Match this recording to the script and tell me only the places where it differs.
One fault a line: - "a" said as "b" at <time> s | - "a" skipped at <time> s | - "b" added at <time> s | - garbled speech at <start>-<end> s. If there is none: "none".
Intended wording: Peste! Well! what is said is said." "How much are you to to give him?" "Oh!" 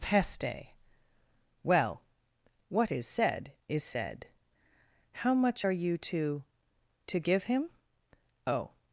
none